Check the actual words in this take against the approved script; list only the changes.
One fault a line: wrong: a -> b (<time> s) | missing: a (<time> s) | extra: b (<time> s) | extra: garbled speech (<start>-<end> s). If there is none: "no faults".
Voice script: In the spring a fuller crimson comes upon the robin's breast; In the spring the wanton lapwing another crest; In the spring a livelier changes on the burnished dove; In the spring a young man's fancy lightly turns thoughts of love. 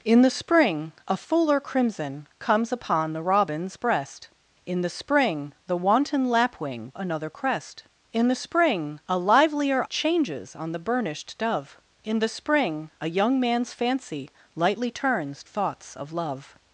no faults